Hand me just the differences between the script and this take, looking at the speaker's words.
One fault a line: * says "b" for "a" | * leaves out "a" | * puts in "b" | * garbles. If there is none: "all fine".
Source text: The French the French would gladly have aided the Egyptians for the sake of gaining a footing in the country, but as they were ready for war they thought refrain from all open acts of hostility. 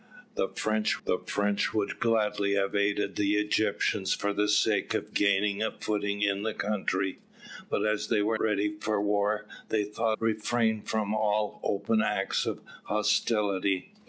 all fine